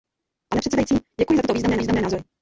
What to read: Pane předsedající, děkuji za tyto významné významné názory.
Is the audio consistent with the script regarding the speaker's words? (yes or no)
yes